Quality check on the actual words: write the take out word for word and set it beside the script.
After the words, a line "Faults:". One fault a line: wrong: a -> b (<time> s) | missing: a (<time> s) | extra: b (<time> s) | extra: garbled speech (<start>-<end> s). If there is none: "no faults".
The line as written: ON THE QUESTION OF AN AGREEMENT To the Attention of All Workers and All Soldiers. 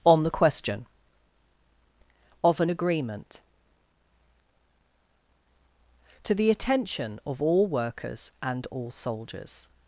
ON THE QUESTION OF AN AGREEMENT To the Attention of All Workers and All Soldiers.
Faults:
no faults